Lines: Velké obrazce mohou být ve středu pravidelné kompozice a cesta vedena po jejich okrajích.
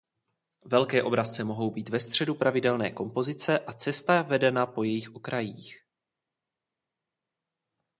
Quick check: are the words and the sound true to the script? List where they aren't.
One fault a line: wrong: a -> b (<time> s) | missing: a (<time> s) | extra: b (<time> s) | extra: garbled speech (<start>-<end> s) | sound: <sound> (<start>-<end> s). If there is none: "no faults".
no faults